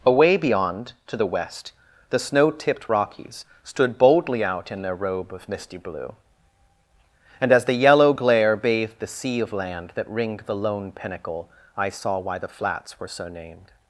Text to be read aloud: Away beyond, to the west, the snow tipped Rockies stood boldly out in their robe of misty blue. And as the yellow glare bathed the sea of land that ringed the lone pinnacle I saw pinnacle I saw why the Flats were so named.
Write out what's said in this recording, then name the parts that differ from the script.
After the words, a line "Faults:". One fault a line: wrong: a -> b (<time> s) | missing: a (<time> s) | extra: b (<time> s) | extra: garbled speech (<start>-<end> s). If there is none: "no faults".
Away beyond, to the west, the snow tipped Rockies stood boldly out in their robe of misty blue. And as the yellow glare bathed the sea of land that ringed the lone pinnacle I saw why the Flats were so named.
Faults:
missing: pinnacle I saw (12.2 s)